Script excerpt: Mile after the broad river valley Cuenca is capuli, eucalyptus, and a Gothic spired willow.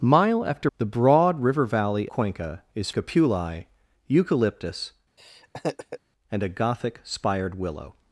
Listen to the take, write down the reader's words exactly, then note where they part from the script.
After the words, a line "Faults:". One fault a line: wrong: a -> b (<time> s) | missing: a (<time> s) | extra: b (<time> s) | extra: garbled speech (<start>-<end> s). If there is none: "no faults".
Mile after the broad river valley Cuenca is capuli, eucalyptus, and a Gothic spired willow.
Faults:
no faults